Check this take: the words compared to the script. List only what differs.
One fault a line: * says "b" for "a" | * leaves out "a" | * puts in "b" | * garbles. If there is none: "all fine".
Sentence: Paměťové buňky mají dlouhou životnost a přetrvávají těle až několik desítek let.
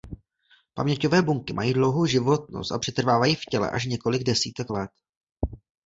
* puts in "v"